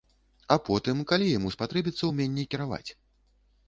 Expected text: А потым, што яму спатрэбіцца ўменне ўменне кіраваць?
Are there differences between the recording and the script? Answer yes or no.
yes